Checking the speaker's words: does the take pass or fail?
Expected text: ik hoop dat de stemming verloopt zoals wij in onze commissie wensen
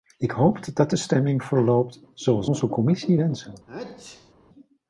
fail